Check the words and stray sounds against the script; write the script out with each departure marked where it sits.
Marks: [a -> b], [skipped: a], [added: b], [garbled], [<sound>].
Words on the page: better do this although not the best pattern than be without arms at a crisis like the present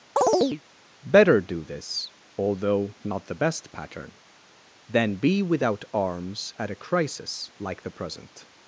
[chirp] better do this although not the best pattern than be without arms at a crisis like the present